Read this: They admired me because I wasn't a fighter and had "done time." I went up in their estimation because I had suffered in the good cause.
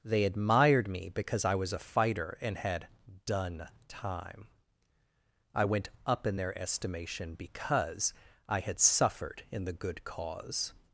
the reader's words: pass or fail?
fail